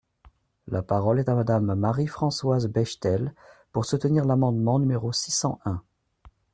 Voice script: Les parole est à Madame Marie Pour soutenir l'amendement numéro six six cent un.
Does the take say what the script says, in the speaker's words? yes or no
no